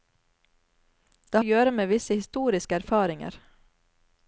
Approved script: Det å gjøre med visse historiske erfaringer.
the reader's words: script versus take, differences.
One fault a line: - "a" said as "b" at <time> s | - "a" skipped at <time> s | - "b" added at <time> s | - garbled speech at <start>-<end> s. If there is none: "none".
none